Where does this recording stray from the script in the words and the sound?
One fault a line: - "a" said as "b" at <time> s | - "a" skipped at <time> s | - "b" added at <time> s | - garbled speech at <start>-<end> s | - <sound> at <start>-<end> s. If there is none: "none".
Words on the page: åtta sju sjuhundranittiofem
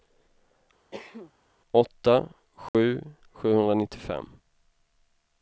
- cough at 0.9-1.3 s
- dropout at 2.7-2.7 s